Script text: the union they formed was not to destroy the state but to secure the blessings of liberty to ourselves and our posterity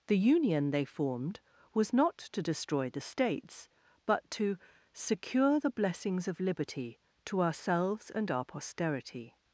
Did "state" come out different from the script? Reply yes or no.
yes